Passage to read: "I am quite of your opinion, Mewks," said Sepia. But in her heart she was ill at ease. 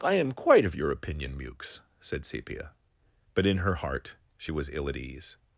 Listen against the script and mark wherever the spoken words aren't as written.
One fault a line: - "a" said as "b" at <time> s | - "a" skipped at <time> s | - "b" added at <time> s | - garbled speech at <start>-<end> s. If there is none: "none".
none